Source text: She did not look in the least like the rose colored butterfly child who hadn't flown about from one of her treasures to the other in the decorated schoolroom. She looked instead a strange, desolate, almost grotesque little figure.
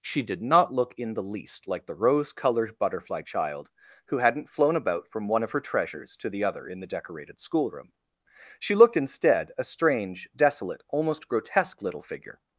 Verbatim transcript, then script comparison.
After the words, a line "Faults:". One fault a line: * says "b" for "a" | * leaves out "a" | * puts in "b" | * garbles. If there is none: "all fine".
She did not look in the least like the rose colored butterfly child who hadn't flown about from one of her treasures to the other in the decorated schoolroom. She looked instead a strange, desolate, almost grotesque little figure.
Faults:
all fine